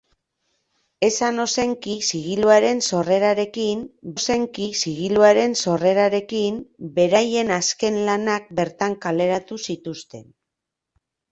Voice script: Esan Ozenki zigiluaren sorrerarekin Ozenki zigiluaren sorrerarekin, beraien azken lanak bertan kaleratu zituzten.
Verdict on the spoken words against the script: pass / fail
pass